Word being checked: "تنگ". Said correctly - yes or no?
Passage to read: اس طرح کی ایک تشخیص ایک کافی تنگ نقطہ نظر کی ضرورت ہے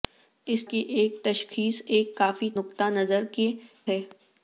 no